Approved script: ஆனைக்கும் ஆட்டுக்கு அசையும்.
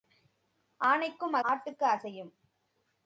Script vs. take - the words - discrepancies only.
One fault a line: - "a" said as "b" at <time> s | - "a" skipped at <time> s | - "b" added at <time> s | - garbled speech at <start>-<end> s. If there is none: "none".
none